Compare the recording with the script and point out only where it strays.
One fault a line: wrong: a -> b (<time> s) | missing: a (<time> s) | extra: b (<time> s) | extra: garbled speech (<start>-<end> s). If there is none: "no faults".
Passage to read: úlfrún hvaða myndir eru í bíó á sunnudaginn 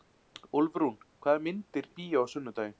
missing: eru (1.9 s)